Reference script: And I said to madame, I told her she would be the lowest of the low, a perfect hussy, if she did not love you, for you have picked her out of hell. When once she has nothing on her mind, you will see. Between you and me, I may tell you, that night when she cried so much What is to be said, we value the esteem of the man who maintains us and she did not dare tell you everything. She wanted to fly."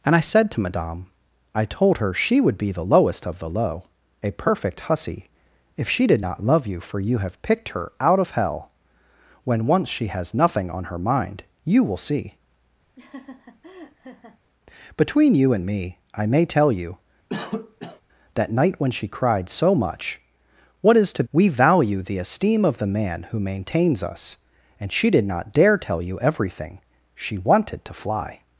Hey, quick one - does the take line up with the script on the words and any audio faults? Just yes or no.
no